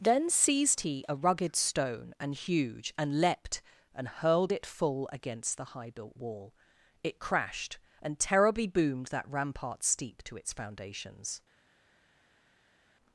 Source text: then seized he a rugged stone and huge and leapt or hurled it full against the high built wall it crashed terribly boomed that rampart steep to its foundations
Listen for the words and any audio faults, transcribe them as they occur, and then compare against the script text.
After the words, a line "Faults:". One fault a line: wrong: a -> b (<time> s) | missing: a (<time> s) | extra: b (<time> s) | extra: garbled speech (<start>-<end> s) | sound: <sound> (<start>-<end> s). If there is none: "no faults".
then seized he a rugged stone and huge and leapt and hurled it full against the high built wall it crashed and terribly boomed that rampart steep to its foundations
Faults:
wrong: or -> and (3.9 s)
extra: and (8.0 s)